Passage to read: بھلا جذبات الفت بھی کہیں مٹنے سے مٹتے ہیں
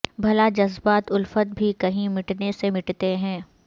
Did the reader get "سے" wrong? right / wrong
right